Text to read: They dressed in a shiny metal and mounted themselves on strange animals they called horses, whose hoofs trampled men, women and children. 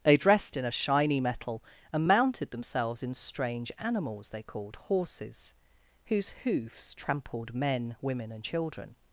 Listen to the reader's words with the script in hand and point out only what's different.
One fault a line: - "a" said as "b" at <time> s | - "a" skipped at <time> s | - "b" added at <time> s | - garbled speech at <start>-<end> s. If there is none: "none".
- "on" said as "in" at 3.0 s